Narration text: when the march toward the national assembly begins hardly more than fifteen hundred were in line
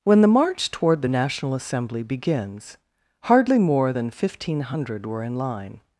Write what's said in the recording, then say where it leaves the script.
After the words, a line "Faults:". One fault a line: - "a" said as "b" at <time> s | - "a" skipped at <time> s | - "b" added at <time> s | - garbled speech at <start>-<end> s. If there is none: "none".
when the march toward the national assembly begins hardly more than fifteen hundred were in line
Faults:
none